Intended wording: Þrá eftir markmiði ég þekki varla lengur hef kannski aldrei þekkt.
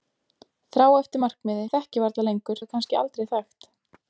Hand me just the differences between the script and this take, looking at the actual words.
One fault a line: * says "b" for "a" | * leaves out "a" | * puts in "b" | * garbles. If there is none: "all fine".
all fine